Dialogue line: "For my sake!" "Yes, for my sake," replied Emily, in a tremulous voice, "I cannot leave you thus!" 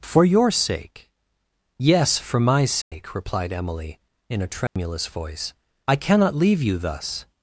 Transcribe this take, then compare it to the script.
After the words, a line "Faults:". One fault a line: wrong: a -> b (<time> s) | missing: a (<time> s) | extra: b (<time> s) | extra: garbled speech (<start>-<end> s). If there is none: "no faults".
"For your sake!" "Yes, for my sake," replied Emily, in a tremulous voice, "I cannot leave you thus!"
Faults:
wrong: my -> your (0.2 s)